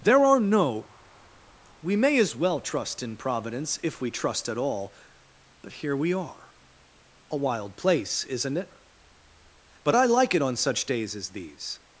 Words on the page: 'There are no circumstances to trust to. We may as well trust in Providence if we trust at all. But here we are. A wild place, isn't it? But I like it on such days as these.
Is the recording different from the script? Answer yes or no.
yes